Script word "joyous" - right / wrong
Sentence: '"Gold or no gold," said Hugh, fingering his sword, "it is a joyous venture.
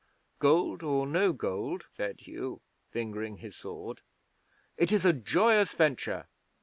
right